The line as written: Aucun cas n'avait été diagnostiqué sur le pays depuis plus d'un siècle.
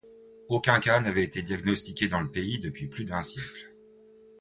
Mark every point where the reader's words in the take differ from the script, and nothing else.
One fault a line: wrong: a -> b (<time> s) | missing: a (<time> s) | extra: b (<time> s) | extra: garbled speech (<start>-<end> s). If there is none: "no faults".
wrong: sur -> dans (2.1 s)